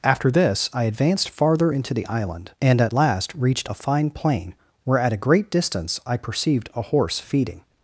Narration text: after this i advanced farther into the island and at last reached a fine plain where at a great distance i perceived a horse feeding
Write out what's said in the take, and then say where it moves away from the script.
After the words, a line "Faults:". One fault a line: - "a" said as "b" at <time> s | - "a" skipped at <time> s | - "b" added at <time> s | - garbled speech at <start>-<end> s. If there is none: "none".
after this i advanced farther into the island and at last reached a fine plain where at a great distance i perceived a horse feeding
Faults:
none